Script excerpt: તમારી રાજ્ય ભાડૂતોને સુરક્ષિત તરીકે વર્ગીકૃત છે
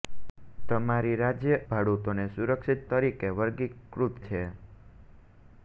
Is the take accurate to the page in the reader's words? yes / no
yes